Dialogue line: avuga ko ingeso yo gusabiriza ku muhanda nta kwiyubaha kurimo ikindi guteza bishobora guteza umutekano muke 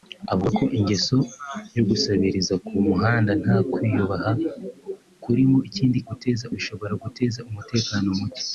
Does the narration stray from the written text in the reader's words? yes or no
no